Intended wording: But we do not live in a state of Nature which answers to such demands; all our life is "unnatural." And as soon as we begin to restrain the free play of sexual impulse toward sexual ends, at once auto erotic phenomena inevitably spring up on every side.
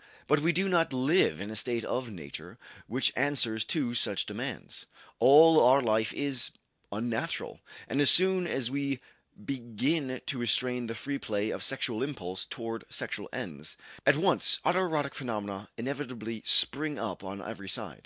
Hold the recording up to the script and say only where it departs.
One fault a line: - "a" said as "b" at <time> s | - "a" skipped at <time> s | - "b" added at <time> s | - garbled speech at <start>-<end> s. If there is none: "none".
none